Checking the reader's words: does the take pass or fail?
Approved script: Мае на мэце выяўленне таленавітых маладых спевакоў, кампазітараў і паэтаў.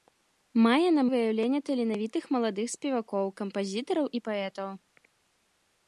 fail